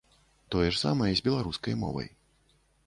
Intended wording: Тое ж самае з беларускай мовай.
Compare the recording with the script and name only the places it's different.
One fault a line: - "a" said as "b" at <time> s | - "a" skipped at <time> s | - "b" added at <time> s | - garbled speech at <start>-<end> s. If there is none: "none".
none